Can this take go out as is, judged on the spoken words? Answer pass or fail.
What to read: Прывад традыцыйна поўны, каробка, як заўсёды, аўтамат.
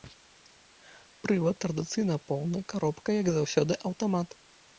pass